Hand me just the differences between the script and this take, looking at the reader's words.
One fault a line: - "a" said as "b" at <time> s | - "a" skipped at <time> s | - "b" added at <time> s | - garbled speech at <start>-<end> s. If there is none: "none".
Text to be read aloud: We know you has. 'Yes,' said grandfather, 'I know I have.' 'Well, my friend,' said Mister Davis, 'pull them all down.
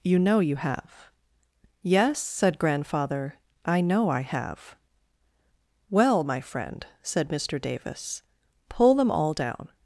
- "We" said as "You" at 0.0 s
- "has" said as "have" at 0.6 s